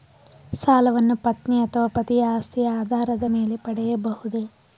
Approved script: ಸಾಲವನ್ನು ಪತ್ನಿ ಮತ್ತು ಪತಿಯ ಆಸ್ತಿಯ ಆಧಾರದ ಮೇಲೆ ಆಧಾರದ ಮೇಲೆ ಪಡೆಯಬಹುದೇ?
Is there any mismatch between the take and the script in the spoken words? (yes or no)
yes